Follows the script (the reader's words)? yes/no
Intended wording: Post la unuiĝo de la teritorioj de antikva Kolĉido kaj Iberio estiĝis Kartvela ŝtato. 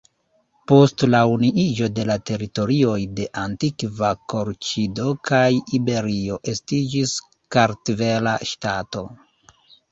yes